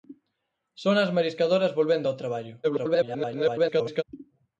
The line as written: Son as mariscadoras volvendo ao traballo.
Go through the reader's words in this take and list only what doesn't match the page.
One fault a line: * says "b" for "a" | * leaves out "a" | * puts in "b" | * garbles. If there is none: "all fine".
* garbles